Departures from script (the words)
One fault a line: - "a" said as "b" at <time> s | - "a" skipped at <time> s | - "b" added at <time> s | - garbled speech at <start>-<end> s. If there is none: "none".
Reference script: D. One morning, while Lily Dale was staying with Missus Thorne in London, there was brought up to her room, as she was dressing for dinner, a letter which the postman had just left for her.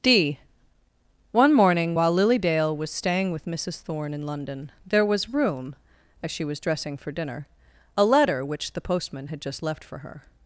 - "brought up to her" skipped at 5.3 s